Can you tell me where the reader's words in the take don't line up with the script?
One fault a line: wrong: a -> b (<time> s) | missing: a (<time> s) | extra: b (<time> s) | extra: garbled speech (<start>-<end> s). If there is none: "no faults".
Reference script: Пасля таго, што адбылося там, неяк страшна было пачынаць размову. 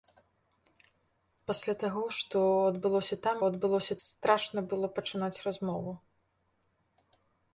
wrong: неяк -> адбылося (3.5 s)